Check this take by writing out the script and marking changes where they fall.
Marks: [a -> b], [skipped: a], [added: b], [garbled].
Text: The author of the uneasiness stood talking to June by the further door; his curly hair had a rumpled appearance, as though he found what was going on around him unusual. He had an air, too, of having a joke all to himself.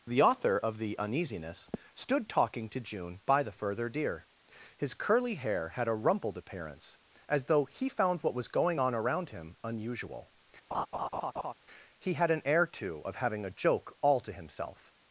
The author of the uneasiness stood talking to June by the further [door; -> deer] his curly hair had a rumpled appearance, as though he found what was going on around him unusual. He had an air, too, of having a joke all to himself.